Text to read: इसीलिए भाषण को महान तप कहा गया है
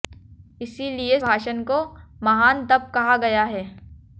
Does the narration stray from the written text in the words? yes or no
no